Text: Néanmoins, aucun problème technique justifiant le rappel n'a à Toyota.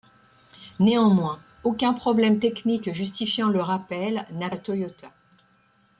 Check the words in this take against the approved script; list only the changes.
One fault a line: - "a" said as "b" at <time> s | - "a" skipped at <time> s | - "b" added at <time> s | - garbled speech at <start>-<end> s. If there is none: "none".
none